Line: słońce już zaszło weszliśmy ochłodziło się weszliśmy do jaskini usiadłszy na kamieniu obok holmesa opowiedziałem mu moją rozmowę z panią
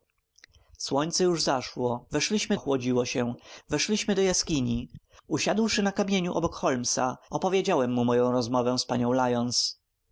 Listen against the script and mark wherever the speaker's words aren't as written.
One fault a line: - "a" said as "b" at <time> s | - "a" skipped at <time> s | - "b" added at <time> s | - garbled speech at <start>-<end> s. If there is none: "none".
none